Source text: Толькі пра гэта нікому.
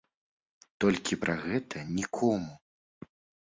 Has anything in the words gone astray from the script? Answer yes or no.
no